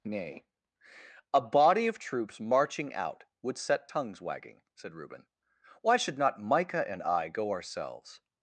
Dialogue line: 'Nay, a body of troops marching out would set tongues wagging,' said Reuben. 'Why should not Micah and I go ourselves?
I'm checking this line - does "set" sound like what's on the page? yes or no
yes